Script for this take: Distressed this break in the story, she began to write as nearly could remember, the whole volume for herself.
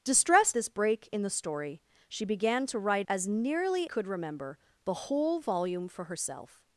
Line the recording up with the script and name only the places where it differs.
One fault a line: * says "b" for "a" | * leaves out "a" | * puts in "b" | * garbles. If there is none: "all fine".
all fine